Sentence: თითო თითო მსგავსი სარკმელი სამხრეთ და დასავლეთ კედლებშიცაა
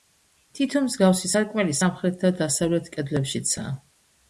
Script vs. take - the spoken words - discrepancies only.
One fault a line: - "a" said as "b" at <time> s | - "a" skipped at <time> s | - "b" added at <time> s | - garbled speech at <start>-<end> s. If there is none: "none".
- "თითო" skipped at 0.8 s